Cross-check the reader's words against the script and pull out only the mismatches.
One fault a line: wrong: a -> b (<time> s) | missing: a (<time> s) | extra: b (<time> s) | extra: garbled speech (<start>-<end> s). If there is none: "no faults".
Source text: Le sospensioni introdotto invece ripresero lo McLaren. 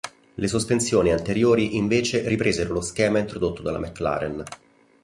wrong: introdotto -> anteriori (1.1 s)
extra: schema introdotto dalla (2.8 s)